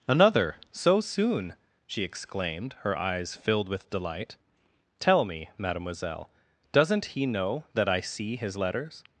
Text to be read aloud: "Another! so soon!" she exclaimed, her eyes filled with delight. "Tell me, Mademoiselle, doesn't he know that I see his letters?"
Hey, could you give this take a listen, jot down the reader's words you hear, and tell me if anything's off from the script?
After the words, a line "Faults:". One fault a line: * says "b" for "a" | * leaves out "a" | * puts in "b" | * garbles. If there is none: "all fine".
"Another! so soon!" she exclaimed, her eyes filled with delight. "Tell me, Mademoiselle, doesn't he know that I see his letters?"
Faults:
all fine